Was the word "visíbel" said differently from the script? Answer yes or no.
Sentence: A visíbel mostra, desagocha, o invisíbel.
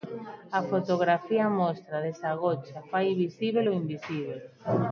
yes